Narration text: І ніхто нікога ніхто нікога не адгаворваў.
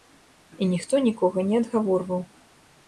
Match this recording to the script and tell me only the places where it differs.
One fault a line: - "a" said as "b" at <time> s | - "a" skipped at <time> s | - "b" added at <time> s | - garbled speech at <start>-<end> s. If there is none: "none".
- "ніхто нікога" skipped at 1.5 s